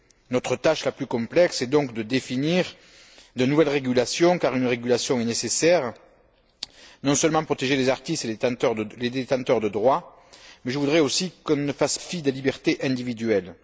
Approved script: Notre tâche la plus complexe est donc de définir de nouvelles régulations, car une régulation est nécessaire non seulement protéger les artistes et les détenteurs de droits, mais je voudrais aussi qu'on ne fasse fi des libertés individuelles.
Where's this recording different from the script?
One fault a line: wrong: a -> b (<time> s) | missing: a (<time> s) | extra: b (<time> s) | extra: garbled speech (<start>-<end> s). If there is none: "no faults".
no faults